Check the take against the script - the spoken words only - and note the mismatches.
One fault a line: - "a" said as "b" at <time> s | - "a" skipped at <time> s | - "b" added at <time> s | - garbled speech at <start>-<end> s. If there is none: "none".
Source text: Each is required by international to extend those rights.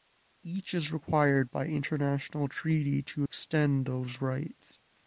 - "treaty" added at 2.5 s